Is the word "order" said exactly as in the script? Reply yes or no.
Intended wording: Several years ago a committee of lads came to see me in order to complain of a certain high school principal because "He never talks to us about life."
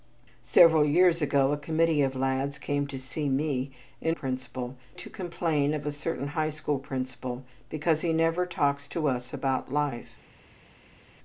no